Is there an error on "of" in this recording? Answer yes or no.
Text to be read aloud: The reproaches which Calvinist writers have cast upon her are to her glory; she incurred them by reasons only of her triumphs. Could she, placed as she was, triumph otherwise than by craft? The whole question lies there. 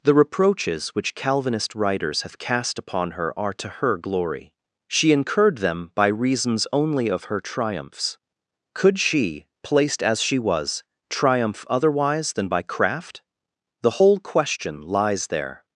no